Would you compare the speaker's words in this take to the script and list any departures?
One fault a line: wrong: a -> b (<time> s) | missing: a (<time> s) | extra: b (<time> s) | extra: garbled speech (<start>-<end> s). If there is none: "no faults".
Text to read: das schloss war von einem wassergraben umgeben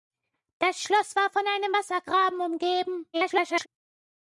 extra: garbled speech (3.1-3.7 s)